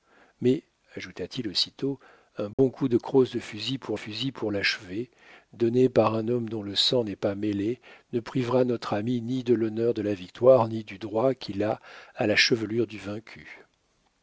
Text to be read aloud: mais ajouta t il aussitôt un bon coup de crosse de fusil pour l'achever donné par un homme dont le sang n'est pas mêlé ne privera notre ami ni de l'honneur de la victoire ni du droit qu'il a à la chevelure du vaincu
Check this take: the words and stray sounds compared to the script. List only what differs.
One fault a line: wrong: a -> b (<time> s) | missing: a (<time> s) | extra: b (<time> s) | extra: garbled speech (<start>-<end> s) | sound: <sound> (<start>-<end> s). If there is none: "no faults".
sound: dropout (2.5-2.6 s)
extra: fusil pour (3.9 s)